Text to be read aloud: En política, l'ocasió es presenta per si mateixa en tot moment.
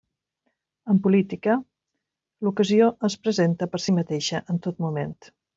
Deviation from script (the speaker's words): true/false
false